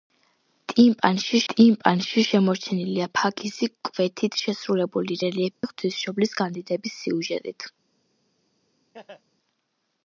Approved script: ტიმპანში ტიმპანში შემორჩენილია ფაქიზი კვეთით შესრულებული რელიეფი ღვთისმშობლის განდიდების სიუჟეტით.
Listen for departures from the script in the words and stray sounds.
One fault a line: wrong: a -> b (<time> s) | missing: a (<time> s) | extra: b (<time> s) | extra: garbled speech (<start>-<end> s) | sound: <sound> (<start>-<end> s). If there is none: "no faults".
sound: dropout (5.5-5.6 s)
sound: laugh (8.9-9.2 s)